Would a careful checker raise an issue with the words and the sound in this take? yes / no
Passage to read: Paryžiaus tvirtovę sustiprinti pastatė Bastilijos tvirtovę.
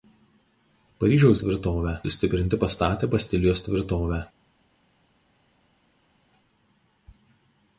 no